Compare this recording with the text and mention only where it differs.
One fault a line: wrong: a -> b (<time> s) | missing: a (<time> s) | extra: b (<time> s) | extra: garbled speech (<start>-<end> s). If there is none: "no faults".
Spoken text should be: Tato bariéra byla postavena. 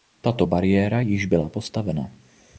extra: již (1.0 s)